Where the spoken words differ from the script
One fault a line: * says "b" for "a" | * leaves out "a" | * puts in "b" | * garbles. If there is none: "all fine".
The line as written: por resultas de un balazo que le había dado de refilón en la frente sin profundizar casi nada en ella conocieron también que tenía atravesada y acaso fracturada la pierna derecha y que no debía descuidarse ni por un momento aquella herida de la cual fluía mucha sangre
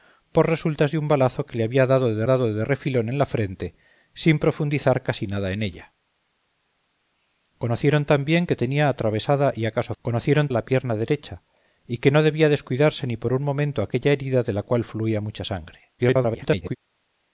* puts in "dado de"
* says "conocieron" for "fracturada"
* garbles